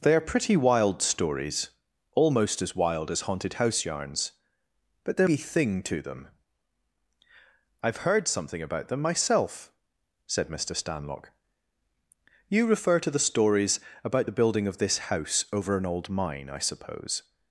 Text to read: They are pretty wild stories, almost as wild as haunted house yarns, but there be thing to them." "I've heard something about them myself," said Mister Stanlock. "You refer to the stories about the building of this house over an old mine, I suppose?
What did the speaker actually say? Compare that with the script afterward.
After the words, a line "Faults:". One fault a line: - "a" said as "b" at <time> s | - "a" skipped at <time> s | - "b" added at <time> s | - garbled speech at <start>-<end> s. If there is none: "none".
They are pretty wild stories, almost as wild as haunted house yarns, but there be thing to them." "I've heard something about them myself," said Mister Stanlock. "You refer to the stories about the building of this house over an old mine, I suppose?
Faults:
none